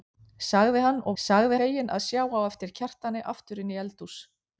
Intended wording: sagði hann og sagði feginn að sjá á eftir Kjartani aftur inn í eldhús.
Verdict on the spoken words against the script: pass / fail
pass